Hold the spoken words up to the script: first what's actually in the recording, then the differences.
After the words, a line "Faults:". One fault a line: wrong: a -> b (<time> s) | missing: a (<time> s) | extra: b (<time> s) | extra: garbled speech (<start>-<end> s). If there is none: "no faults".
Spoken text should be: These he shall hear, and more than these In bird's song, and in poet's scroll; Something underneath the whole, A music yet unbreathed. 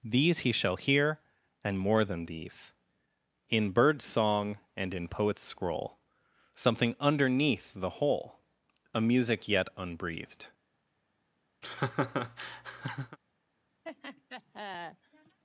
These he shall hear, and more than these In bird's song, and in poet's scroll; Something underneath the whole, A music yet unbreathed.
Faults:
no faults